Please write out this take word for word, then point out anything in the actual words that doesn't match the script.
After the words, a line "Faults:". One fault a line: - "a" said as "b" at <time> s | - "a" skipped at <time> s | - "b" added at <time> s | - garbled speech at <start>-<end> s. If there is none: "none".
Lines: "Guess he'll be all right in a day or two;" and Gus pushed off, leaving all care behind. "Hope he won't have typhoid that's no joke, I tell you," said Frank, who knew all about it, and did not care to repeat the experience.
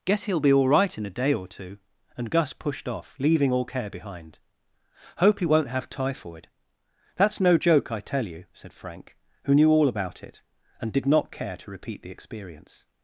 "Guess he'll be all right in a day or two;" and Gus pushed off, leaving all care behind. "Hope he won't have typhoid that's no joke, I tell you," said Frank, who knew all about it, and did not care to repeat the experience.
Faults:
none